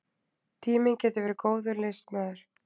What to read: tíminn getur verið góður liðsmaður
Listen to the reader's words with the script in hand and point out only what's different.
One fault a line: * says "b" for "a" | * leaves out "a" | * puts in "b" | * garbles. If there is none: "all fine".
all fine